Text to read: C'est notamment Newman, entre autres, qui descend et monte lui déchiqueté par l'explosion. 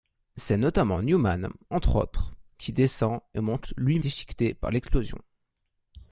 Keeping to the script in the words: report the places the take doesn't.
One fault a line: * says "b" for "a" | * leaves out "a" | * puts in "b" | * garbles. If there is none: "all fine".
all fine